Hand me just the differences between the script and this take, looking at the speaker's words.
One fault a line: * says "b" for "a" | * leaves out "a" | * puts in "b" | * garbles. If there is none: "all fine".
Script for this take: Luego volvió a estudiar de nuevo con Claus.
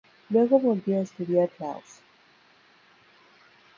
* leaves out "de nuevo con"